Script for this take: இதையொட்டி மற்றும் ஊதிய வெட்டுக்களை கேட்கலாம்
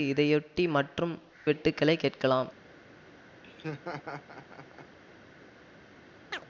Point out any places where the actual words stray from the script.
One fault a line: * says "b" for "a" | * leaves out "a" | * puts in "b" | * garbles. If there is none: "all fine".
* leaves out "ஊதிய"